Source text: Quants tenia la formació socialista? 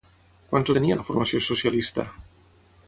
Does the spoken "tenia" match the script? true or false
true